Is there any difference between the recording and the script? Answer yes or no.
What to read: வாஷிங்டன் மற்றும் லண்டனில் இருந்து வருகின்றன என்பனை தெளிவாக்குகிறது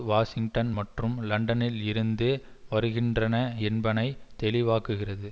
no